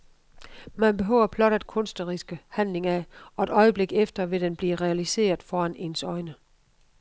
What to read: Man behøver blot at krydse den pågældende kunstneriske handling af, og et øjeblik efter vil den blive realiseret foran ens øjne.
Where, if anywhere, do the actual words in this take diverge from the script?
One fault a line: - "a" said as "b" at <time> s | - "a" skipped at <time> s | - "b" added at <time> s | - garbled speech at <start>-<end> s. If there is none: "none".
- "krydse den pågældende" skipped at 1.6 s